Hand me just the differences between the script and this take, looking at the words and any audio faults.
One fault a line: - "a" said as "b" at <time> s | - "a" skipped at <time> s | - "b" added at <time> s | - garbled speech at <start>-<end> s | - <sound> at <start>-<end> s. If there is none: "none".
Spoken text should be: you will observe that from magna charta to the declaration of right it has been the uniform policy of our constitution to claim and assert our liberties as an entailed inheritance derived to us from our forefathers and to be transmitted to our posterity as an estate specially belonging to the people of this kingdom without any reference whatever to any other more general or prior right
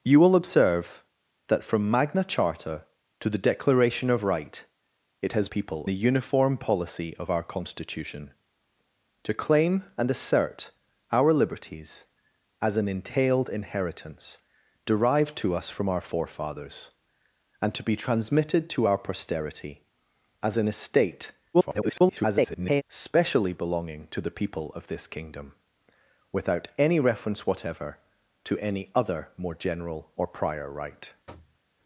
- "been" said as "people" at 5.5 s
- garbled speech at 21.5-22.8 s
- thud at 31.3-31.6 s